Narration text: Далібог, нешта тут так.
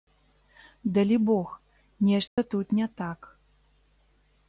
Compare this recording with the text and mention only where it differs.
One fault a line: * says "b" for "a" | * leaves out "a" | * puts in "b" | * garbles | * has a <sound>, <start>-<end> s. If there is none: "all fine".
* has a dropout, 2.3-2.4 s
* puts in "не"